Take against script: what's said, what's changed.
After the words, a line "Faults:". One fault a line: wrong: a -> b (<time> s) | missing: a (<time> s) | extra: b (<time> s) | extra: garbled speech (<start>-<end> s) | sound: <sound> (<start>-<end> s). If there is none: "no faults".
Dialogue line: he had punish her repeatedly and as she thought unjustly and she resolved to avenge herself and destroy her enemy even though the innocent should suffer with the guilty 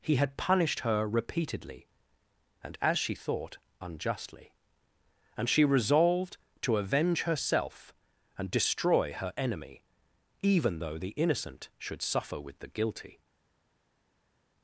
he had punished her repeatedly and as she thought unjustly and she resolved to avenge herself and destroy her enemy even though the innocent should suffer with the guilty
Faults:
wrong: punish -> punished (0.4 s)